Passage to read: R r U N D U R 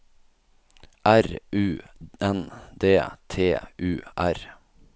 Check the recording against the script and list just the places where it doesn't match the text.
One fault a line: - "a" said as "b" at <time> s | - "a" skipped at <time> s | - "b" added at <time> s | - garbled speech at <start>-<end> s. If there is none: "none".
- "r" skipped at 1.2 s
- "T" added at 3.3 s